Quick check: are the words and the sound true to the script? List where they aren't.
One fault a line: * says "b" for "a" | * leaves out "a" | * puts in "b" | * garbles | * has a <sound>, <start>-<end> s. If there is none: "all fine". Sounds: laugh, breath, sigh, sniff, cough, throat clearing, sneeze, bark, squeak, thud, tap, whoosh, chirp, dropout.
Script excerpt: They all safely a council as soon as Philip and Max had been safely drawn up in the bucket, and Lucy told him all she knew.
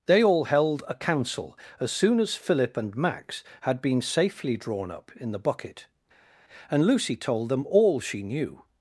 * says "held" for "safely"
* says "them" for "him"